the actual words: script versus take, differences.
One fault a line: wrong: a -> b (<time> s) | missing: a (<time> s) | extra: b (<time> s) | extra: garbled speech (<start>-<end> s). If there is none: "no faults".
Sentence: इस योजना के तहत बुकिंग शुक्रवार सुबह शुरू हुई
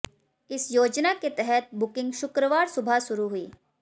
no faults